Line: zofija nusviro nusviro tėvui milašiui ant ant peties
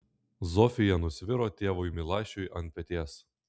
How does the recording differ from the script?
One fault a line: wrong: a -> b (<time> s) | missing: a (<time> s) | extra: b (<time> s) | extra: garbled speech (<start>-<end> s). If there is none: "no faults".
missing: nusviro (1.5 s)
missing: ant (2.8 s)